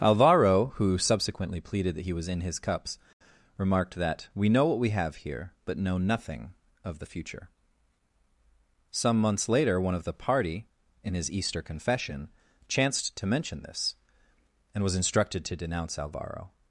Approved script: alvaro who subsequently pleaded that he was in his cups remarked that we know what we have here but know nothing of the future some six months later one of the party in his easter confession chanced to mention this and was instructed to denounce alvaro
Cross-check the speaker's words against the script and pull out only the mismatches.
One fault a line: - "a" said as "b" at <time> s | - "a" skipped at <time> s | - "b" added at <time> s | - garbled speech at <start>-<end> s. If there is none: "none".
- "six" skipped at 9.2 s